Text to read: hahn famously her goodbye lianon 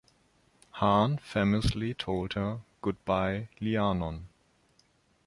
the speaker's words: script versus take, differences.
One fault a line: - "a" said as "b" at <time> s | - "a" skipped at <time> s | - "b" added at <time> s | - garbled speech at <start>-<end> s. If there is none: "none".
- "told" added at 1.9 s